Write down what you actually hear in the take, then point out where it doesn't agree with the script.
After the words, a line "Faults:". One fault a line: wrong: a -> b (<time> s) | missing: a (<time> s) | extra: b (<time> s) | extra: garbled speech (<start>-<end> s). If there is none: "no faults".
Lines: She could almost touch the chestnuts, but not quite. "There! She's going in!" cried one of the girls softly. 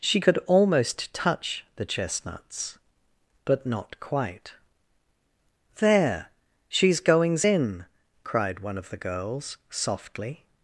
She could almost touch the chestnuts, but not quite. "There! She's goings in!" cried one of the girls softly.
Faults:
wrong: going -> goings (7.0 s)